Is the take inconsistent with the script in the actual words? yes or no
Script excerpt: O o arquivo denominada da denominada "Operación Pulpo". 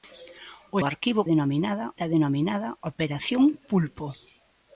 no